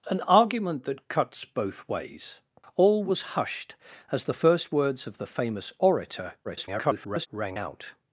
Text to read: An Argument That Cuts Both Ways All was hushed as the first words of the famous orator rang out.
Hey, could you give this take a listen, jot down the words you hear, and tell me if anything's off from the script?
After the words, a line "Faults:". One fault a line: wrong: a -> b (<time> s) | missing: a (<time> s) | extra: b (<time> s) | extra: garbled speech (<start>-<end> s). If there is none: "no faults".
An Argument That Cuts Both Ways All was hushed as the first words of the famous orator [garbled] rang out.
Faults:
extra: garbled speech (6.4-7.3 s)